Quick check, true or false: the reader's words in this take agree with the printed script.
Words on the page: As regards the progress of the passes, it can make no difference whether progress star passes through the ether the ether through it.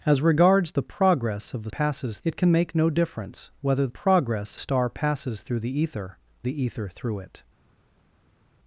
true